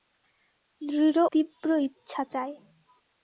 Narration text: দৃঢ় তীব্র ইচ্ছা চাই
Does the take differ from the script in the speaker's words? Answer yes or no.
no